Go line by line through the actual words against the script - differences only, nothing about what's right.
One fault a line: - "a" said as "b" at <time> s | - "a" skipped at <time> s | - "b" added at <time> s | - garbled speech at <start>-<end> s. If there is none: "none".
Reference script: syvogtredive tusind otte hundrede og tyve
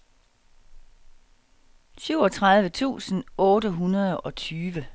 none